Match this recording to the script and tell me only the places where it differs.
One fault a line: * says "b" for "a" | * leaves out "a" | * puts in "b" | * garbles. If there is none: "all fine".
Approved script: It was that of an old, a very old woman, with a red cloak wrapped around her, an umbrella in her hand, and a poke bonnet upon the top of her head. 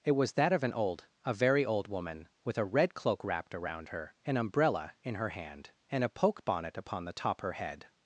* leaves out "of"